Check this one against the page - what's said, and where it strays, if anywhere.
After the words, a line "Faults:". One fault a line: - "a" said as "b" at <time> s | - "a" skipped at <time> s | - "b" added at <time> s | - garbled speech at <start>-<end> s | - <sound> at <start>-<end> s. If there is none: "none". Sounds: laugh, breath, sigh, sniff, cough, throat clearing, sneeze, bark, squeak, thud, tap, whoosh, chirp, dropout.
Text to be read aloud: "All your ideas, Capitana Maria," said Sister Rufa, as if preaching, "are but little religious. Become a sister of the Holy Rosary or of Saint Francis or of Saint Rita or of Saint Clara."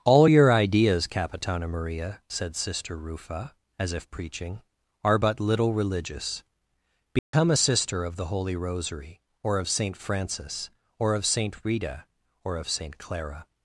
"All your ideas, Capitana Maria," said Sister Rufa, as if preaching, "are but little religious. Become a sister of the Holy Rosary or of Saint Francis or of Saint Rita or of Saint Clara."
Faults:
- dropout at 7.2-7.3 s